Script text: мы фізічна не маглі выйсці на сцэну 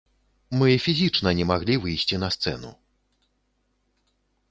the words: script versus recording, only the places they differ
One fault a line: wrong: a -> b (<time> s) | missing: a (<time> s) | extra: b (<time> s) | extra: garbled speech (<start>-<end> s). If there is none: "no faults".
no faults